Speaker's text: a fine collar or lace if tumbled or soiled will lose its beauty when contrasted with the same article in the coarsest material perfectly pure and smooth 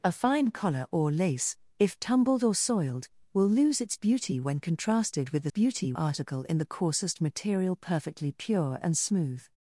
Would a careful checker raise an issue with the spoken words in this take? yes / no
yes